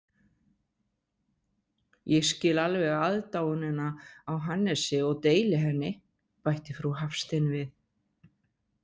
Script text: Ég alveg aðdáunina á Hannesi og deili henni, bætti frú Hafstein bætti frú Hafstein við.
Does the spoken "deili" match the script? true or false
true